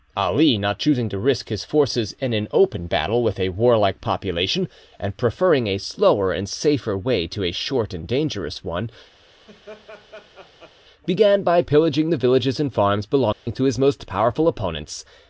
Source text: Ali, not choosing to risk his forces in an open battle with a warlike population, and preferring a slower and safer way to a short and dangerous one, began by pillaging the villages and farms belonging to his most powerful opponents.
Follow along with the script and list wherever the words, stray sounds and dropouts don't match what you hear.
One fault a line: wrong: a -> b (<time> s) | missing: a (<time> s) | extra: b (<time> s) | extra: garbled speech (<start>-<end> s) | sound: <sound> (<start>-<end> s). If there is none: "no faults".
sound: laugh (9.2-10.8 s)
sound: dropout (13.3-13.5 s)